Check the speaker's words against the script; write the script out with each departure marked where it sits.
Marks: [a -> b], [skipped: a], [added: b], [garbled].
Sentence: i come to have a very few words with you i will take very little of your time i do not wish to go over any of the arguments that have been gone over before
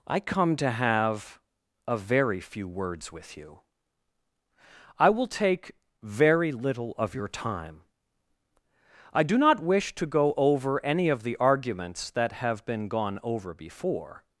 i come to have a very few words with you i will take very little of your time i do not wish to go over any of the arguments that have been gone over before